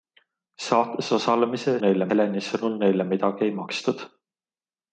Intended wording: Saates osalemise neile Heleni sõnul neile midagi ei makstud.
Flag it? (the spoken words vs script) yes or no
no